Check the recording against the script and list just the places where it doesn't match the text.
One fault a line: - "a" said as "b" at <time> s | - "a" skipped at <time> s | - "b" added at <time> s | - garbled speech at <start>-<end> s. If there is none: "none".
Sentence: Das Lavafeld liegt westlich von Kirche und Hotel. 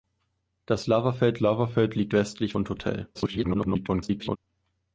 - "Lavafeld" added at 1.4 s
- "von Kirche" skipped at 2.5 s
- garbled speech at 3.1-4.4 s